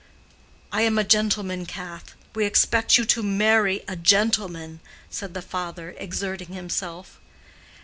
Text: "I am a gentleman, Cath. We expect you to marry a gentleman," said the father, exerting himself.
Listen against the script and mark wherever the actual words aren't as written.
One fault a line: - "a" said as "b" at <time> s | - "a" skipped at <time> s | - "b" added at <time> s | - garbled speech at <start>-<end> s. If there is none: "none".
none